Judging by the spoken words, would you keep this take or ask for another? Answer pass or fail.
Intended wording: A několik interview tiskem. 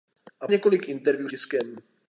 pass